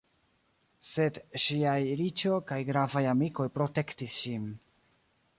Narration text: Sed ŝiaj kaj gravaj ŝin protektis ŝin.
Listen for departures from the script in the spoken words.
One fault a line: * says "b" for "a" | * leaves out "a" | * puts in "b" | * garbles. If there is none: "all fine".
* puts in "riĉo"
* says "amikoj" for "ŝin"